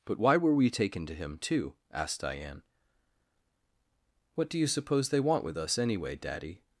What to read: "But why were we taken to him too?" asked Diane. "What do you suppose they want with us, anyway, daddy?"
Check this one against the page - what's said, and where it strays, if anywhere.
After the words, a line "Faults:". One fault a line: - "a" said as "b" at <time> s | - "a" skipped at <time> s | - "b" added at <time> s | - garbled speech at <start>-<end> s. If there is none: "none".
"But why were we taken to him too?" asked Diane. "What do you suppose they want with us, anyway, daddy?"
Faults:
none